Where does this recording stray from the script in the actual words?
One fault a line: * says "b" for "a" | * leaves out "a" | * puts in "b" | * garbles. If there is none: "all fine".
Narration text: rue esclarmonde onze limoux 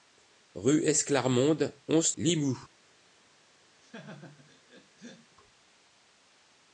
all fine